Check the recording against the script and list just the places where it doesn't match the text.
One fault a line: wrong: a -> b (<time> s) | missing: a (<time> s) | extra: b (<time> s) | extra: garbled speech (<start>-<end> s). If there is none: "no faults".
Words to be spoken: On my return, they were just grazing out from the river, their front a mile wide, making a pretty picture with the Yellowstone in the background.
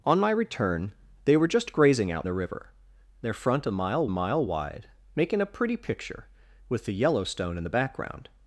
missing: from (2.3 s)
extra: mile (4.1 s)